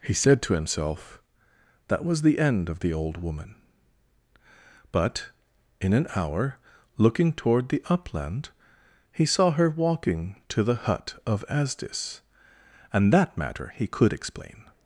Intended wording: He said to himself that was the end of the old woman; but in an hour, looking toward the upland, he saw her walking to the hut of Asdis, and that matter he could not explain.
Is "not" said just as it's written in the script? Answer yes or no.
no